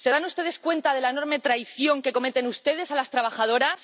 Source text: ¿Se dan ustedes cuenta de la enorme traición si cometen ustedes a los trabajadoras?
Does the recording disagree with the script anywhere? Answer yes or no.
yes